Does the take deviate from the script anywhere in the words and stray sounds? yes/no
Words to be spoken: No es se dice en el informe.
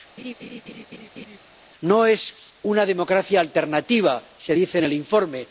yes